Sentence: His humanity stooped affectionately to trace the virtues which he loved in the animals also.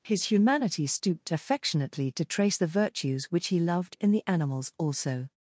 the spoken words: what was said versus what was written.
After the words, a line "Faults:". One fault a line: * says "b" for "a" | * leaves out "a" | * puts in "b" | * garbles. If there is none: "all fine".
His humanity stooped affectionately to trace the virtues which he loved in the animals also.
Faults:
all fine